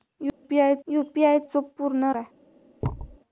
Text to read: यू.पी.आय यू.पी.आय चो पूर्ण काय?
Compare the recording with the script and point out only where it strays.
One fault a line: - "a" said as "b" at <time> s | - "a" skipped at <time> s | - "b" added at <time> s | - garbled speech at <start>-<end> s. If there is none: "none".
none